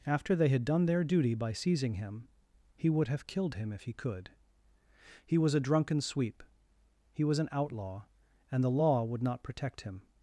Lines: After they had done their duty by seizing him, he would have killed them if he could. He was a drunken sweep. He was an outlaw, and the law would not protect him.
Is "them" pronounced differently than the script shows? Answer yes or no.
yes